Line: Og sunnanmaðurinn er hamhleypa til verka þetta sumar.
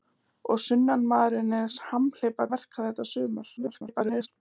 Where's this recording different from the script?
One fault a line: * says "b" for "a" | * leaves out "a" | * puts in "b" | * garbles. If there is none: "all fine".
* leaves out "til"
* garbles